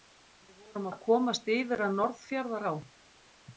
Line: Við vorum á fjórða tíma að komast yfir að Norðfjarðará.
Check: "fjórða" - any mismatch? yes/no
yes